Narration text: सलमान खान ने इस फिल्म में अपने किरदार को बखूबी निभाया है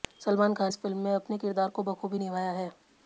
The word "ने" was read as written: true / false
false